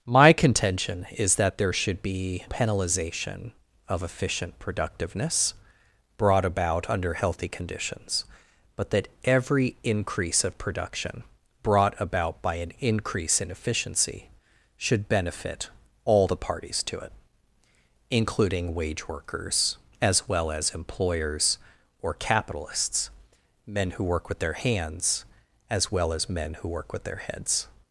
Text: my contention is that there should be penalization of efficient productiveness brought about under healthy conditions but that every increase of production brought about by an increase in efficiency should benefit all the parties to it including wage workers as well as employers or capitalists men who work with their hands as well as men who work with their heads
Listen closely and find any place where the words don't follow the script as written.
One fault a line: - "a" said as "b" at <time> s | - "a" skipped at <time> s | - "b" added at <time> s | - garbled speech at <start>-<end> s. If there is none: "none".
none